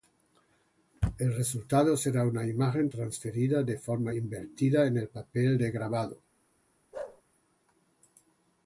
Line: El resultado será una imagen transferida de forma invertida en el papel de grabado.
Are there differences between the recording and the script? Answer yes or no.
no